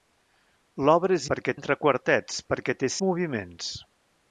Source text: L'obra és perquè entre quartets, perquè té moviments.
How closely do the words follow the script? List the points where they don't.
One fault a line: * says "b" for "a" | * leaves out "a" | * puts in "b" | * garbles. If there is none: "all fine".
all fine